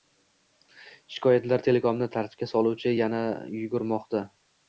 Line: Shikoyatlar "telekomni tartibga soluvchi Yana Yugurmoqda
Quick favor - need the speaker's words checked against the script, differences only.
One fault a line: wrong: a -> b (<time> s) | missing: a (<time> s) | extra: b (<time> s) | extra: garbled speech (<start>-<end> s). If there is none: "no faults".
no faults